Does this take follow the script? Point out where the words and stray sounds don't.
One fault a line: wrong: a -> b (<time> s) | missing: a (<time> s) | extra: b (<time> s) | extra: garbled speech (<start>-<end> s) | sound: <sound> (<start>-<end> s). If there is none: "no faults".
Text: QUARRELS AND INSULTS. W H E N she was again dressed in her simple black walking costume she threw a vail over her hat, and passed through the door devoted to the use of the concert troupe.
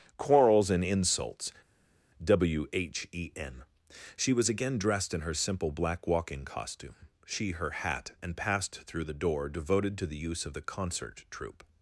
missing: threw a vail over (7.5 s)